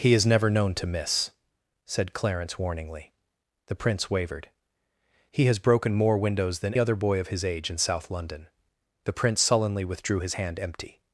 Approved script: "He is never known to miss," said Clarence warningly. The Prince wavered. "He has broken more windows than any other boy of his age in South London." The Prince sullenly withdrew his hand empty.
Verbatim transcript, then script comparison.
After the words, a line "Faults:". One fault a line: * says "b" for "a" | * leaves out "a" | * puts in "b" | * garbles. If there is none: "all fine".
"He is never known to miss," said Clarence warningly. The Prince wavered. "He has broken more windows than other boy of his age in South London." The Prince sullenly withdrew his hand empty.
Faults:
* leaves out "any"